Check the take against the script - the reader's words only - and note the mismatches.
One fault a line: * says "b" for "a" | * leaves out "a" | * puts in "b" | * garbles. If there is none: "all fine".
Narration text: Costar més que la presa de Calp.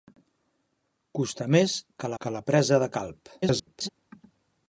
* puts in "que"
* garbles